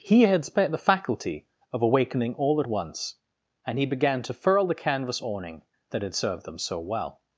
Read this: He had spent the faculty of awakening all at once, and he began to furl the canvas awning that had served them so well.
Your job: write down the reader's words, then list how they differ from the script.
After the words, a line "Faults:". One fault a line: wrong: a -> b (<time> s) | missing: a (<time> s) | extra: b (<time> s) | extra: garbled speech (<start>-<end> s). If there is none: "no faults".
He had spent the faculty of awakening all at once, and he began to furl the canvas awning that had served them so well.
Faults:
no faults